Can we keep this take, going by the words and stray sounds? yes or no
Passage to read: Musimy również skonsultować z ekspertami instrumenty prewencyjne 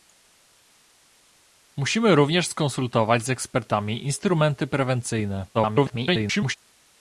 no